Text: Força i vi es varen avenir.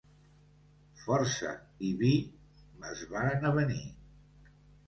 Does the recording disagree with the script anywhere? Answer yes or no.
no